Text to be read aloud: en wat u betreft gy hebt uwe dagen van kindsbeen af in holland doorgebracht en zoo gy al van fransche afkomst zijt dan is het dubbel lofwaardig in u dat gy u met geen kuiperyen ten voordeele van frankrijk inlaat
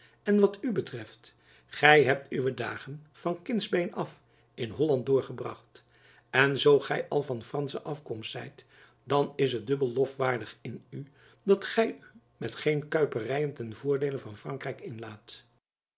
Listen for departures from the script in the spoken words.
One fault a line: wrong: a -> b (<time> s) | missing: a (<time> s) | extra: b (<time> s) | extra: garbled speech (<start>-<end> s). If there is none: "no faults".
no faults